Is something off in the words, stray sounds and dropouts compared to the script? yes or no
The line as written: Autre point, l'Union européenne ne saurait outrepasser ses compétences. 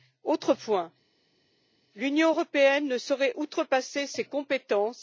no